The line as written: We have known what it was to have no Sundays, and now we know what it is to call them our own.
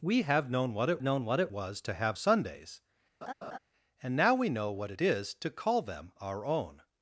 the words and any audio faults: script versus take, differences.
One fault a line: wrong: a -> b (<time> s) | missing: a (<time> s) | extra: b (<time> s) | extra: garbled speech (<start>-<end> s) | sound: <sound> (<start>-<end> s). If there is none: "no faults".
extra: known what it (1.0 s)
missing: no (2.2 s)
sound: laugh (3.2-3.6 s)